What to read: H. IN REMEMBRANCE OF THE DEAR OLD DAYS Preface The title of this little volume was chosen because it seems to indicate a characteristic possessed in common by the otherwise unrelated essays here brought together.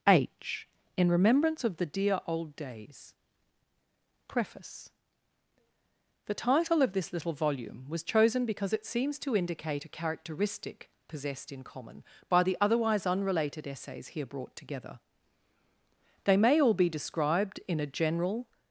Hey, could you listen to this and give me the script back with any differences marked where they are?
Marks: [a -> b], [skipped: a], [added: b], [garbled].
H. IN REMEMBRANCE OF THE DEAR OLD DAYS Preface The title of this little volume was chosen because it seems to indicate a characteristic possessed in common by the otherwise unrelated essays here brought together. [added: They may all be described in a general]